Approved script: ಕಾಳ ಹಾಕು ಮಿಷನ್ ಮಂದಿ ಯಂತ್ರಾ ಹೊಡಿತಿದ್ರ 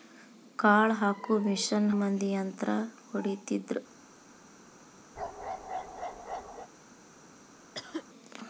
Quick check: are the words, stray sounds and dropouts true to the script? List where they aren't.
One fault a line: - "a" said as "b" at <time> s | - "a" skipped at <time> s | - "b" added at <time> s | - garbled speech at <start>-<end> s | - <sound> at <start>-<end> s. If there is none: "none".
- bark at 5.2-6.7 s
- cough at 7.7-8.0 s